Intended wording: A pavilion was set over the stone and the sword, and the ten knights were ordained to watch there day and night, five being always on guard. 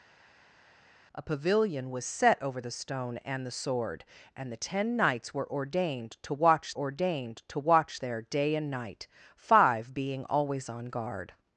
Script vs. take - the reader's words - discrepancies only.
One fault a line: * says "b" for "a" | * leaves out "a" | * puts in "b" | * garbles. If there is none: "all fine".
* puts in "ordained to watch"